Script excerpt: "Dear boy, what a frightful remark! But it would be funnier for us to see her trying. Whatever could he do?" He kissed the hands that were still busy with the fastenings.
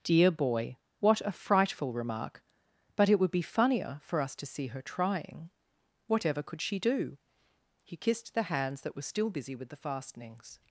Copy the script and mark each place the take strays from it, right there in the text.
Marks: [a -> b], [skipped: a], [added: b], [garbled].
"Dear boy, what a frightful remark! But it would be funnier for us to see her trying. Whatever could [he -> she] do?" He kissed the hands that were still busy with the fastenings.